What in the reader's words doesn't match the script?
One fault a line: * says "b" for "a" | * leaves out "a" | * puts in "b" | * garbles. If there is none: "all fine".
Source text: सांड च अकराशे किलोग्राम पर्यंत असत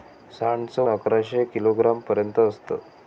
all fine